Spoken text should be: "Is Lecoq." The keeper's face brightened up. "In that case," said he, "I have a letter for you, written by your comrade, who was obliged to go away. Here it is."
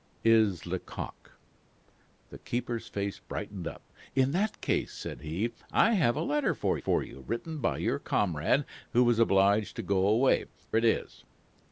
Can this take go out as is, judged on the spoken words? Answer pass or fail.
fail